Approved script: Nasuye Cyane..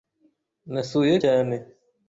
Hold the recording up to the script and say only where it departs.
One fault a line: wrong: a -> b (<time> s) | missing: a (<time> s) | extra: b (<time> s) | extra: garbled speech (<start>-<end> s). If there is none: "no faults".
no faults